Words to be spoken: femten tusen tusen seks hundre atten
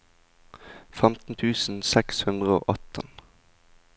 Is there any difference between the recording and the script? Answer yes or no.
yes